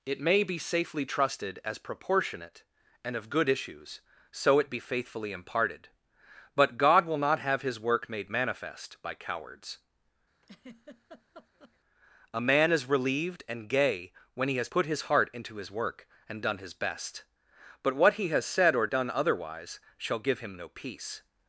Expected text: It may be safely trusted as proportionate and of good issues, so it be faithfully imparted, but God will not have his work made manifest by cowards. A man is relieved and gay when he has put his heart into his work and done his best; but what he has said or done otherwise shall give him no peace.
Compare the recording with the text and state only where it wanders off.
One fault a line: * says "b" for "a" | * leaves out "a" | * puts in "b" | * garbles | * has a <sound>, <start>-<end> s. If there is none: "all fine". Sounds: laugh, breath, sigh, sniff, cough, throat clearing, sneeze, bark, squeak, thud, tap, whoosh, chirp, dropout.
* has a laugh, 10.4-11.8 s